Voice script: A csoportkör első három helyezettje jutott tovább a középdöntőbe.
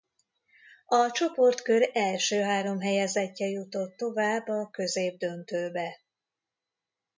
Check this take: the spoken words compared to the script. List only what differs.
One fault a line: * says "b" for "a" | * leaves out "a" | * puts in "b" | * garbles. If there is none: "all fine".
all fine